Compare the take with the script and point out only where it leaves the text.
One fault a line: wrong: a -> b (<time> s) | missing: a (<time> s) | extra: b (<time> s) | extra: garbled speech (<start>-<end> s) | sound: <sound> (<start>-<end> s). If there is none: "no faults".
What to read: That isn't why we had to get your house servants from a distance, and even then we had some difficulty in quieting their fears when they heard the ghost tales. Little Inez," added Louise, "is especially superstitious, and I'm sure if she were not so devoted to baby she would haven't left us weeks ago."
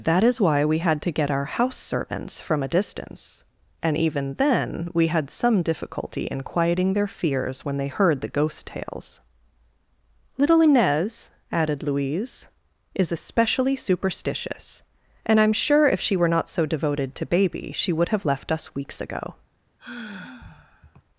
wrong: isn't -> is (0.2 s)
wrong: your -> our (1.3 s)
wrong: haven't -> have (18.1 s)
sound: sigh (19.8-21.0 s)